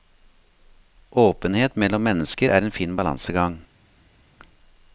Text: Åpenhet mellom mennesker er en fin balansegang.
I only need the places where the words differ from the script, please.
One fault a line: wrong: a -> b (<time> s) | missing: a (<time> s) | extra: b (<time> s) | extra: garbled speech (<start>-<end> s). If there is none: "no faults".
no faults